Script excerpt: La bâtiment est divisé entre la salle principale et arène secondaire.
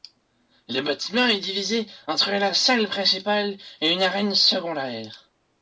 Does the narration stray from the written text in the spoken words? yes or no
yes